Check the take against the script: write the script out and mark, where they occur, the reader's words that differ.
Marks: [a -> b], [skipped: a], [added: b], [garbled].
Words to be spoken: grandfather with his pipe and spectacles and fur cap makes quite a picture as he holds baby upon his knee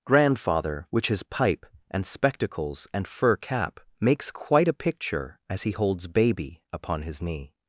grandfather [with -> which] his pipe and spectacles and fur cap makes quite a picture as he holds baby upon his knee